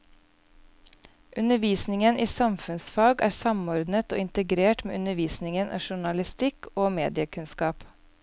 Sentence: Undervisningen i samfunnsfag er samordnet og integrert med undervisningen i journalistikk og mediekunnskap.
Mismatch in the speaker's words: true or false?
false